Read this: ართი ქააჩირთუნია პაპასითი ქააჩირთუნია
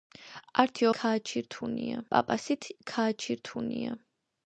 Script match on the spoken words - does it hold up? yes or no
yes